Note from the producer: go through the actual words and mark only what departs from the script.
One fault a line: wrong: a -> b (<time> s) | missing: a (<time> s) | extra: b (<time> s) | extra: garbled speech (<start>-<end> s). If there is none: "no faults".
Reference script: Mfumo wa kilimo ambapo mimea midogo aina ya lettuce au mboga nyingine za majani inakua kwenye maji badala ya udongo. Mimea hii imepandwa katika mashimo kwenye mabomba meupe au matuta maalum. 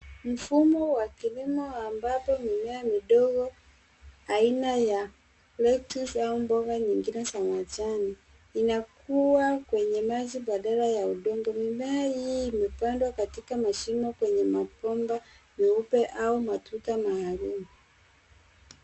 no faults